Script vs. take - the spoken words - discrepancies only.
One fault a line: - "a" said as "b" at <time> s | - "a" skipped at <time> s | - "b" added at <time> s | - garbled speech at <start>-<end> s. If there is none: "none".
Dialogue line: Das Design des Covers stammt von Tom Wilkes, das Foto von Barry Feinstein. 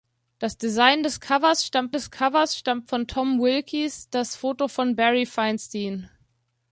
- "des Covers stammt" added at 1.9 s